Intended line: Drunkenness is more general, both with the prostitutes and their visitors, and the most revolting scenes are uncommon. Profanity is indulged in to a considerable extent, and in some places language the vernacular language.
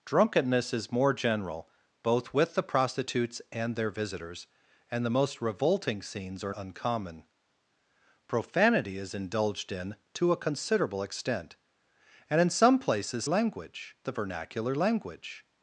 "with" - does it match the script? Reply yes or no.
yes